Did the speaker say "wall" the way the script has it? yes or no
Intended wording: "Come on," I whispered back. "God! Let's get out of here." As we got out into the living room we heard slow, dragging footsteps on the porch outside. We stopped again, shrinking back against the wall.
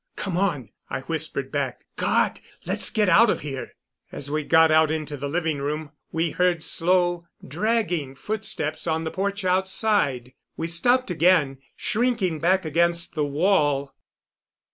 yes